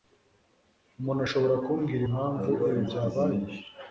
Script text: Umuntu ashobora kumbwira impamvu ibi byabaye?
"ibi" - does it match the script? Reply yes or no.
yes